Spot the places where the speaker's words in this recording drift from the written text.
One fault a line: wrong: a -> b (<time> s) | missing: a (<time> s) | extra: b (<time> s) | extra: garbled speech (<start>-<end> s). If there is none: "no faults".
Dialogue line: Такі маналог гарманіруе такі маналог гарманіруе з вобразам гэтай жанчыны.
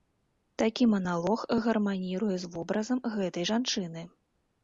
missing: такі маналог гарманіруе (2.4 s)